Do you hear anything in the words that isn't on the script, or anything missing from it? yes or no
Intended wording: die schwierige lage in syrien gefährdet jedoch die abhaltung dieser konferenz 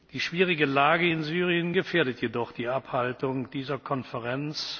no